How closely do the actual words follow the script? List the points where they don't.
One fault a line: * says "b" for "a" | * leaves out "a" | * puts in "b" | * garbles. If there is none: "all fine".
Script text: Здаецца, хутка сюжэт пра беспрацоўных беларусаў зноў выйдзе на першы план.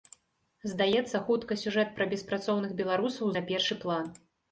* leaves out "зноў выйдзе"